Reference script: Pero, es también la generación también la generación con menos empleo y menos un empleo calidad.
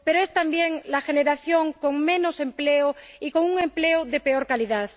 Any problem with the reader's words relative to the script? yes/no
yes